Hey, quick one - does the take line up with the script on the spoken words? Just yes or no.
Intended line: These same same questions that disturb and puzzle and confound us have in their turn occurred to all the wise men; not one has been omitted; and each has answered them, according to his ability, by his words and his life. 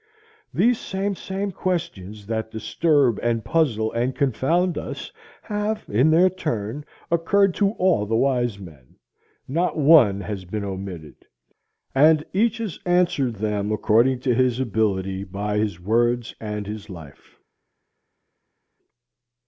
yes